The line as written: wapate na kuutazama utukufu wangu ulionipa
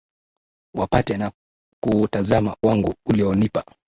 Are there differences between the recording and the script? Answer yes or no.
yes